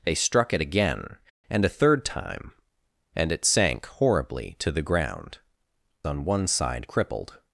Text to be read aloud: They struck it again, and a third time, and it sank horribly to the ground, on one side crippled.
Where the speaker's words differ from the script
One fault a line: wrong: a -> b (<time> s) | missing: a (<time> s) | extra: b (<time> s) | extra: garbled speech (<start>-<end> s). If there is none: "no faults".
no faults